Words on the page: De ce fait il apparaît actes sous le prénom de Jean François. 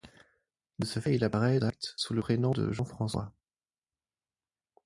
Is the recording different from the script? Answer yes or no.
no